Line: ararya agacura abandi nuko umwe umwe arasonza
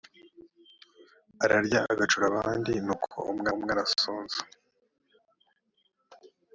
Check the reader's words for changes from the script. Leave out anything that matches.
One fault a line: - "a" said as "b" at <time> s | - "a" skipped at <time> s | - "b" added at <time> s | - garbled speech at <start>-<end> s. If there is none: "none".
none